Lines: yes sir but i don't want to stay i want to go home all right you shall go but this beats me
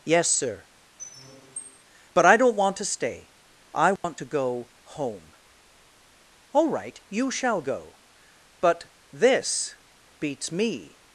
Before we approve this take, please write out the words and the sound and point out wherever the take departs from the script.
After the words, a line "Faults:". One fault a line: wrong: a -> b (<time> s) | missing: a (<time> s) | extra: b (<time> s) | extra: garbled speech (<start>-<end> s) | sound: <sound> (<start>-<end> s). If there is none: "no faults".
yes sir but i don't want to stay i want to go home all right you shall go but this beats me
Faults:
sound: squeak (1.0-1.8 s)
sound: dropout (4.0-4.0 s)